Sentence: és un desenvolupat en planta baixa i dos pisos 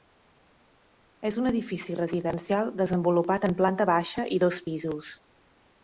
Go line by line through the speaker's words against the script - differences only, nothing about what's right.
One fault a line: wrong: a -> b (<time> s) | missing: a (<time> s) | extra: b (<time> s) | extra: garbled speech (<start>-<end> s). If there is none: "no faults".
extra: edifici residencial (1.5 s)